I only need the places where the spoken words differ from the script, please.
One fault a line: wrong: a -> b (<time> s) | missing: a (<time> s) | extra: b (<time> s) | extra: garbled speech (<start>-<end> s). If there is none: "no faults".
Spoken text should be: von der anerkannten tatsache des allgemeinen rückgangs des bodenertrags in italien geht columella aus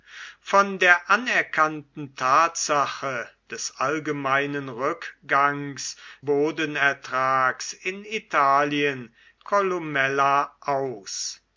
missing: des (6.0 s)
missing: geht (9.1 s)